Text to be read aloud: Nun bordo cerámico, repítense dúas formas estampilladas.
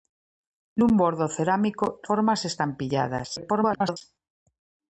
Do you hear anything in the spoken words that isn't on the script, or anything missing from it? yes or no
yes